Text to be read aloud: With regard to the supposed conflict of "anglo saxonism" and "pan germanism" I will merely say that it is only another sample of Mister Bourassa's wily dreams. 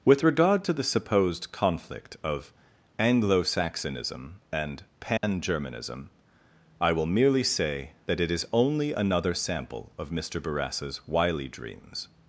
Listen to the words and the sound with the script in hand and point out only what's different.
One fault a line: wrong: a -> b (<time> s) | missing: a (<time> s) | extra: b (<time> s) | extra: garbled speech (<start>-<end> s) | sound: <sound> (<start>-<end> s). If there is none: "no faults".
sound: dropout (5.2-5.2 s)